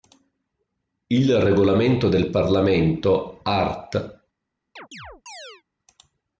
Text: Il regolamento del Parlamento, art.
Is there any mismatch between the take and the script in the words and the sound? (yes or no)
yes